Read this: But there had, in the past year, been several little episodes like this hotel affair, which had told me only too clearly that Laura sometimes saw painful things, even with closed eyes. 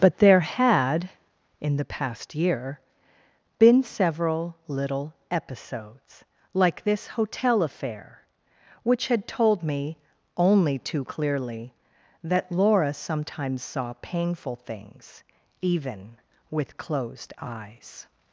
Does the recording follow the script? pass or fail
pass